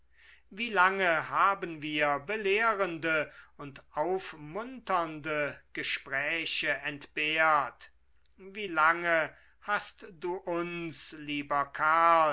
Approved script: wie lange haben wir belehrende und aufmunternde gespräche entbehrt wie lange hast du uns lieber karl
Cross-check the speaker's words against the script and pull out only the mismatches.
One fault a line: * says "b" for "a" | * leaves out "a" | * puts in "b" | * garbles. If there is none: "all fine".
all fine